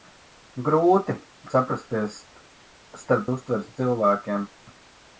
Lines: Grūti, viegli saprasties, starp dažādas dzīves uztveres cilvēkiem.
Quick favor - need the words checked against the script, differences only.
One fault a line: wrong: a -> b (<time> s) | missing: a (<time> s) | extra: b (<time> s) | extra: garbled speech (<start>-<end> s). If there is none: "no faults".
missing: viegli (1.1 s)
missing: dažādas dzīves (3.3 s)